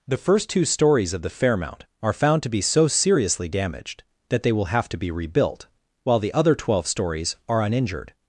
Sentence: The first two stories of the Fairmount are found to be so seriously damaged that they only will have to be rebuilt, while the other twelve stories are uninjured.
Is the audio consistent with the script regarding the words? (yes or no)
no